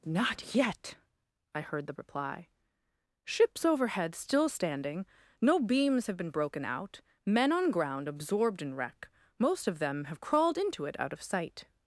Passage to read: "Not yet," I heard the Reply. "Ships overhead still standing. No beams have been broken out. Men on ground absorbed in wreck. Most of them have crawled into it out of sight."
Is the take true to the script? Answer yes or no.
yes